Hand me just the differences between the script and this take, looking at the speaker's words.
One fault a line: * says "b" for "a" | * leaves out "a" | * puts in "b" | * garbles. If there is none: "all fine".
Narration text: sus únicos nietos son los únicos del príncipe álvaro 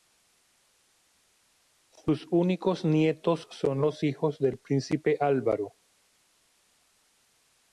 * says "hijos" for "únicos"